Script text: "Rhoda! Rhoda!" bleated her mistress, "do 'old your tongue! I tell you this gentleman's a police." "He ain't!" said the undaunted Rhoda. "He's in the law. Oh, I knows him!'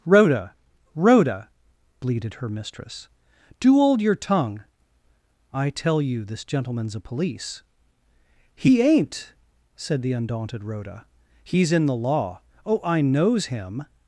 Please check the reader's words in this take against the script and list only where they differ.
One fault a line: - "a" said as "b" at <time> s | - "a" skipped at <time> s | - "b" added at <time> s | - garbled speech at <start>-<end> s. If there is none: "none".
- "old" said as "hold" at 3.7 s